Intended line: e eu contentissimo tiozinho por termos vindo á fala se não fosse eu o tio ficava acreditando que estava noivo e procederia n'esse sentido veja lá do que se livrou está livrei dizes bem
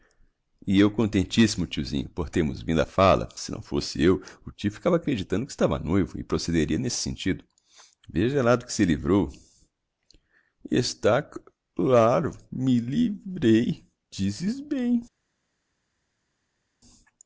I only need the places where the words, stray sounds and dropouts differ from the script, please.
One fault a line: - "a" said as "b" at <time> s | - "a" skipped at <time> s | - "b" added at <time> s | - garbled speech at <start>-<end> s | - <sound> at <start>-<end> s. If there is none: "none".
- "c laro me" added at 11.2 s